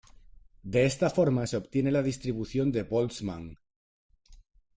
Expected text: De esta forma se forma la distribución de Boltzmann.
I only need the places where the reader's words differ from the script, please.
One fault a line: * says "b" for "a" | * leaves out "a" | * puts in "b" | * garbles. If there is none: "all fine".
* says "obtiene" for "forma"